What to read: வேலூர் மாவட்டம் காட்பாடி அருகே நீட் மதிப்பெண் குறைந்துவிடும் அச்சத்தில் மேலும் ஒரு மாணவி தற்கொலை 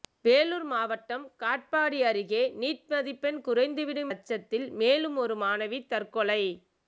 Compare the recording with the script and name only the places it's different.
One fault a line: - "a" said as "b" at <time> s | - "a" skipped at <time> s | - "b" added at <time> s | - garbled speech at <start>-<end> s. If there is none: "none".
none